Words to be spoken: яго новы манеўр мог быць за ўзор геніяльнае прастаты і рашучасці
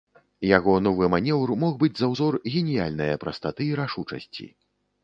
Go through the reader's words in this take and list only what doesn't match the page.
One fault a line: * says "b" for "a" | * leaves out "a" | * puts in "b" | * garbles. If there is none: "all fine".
all fine